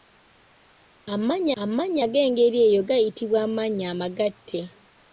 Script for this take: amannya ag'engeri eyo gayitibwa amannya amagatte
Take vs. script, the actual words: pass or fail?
fail